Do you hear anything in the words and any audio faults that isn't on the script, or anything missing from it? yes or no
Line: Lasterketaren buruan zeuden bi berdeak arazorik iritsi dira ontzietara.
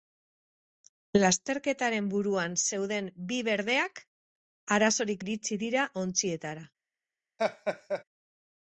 yes